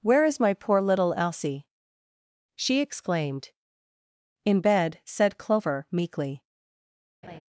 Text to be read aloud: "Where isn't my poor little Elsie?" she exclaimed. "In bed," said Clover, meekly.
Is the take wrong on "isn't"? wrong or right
wrong